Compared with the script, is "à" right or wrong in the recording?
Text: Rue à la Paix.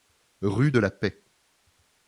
wrong